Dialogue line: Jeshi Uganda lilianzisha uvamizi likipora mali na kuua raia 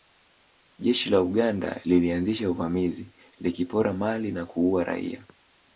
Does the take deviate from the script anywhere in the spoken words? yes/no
yes